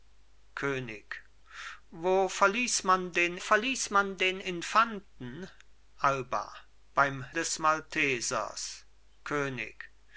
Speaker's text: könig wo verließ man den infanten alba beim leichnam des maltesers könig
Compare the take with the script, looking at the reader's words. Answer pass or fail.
fail